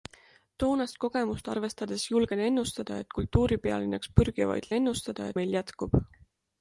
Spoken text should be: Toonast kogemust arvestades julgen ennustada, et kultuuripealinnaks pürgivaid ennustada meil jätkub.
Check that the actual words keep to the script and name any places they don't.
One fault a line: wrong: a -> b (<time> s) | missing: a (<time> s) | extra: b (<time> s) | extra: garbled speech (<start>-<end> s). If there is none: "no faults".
no faults